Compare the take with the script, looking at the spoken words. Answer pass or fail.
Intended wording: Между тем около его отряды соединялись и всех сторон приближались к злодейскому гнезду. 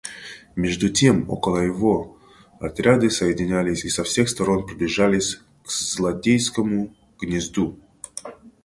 fail